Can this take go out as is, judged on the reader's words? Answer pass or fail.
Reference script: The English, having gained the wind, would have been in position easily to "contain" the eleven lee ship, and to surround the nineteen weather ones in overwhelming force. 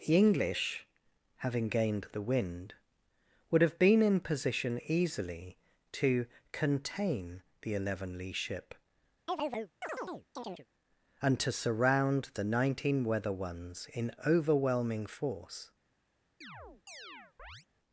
pass